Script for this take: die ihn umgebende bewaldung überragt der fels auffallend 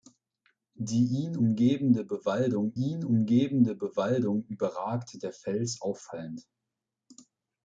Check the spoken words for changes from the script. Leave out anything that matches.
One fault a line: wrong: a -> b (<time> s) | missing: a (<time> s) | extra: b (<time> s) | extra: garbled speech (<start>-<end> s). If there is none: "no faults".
extra: ihn umgebende bewaldung (2.7 s)